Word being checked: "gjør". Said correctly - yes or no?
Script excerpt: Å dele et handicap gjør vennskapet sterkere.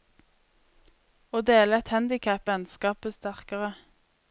no